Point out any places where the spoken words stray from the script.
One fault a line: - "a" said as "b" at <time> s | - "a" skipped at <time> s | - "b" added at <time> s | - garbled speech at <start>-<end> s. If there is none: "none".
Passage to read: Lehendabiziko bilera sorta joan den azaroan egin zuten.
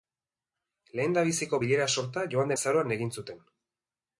- "den" skipped at 2.6 s